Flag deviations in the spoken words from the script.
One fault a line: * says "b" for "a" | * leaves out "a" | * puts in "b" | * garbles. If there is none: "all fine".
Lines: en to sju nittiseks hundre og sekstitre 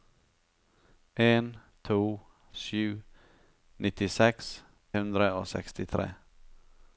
all fine